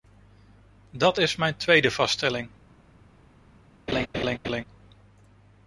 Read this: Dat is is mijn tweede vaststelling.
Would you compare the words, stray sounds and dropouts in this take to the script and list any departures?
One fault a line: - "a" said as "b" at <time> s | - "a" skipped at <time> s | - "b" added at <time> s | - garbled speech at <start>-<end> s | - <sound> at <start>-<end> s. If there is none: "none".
- "is" skipped at 1.4 s
- laugh at 3.9-4.6 s